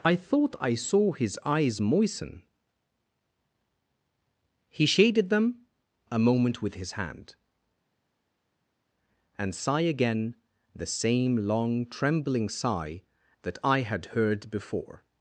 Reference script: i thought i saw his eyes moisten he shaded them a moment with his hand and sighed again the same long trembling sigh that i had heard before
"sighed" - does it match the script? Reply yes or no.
no